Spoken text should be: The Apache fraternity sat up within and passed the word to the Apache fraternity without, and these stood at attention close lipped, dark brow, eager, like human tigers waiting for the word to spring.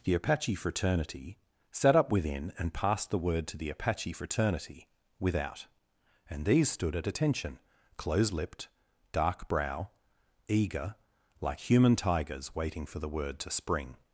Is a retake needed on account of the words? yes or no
no